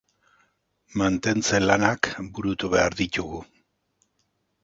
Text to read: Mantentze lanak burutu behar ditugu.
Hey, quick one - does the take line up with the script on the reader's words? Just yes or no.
yes